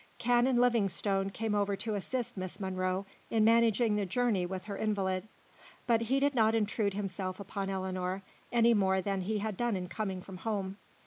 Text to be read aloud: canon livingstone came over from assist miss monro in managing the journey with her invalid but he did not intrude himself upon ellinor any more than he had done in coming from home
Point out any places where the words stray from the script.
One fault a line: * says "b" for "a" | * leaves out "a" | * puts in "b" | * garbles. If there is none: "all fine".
* says "to" for "from"